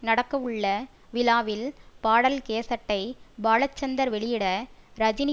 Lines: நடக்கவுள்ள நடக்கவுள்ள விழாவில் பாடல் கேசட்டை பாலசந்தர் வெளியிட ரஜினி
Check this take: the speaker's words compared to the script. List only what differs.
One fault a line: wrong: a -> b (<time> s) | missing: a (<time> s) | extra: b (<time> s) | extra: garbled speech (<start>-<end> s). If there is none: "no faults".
missing: நடக்கவுள்ள (0.7 s)